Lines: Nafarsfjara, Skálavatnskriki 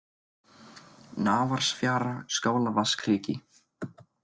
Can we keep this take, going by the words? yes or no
yes